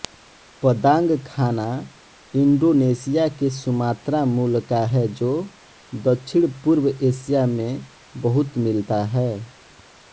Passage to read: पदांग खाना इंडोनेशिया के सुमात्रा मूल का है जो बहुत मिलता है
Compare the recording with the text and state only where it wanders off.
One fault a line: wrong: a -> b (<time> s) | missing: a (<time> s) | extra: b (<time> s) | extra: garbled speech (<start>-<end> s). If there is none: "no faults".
extra: दक्षिणपूर्व एशिया में (5.9 s)